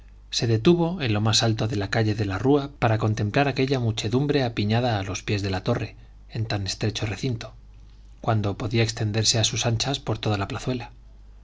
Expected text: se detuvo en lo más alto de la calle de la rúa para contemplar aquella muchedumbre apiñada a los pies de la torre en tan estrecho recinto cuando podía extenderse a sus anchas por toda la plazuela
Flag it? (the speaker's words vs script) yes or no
no